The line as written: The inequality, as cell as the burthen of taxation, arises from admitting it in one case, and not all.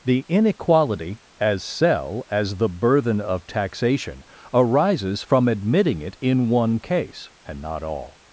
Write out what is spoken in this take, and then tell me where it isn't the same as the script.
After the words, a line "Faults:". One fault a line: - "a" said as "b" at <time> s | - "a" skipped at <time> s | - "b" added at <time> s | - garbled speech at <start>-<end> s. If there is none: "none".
The inequality, as cell as the burthen of taxation, arises from admitting it in one case, and not all.
Faults:
none